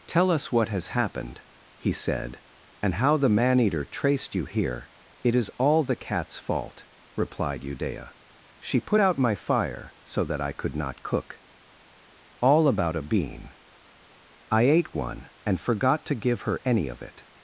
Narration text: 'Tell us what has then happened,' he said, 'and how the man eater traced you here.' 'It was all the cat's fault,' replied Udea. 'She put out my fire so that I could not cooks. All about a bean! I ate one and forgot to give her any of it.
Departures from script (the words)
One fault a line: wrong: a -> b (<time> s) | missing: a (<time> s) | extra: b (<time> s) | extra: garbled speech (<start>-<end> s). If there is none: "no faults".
missing: then (0.9 s)
wrong: was -> is (5.3 s)
wrong: cooks -> cook (11.0 s)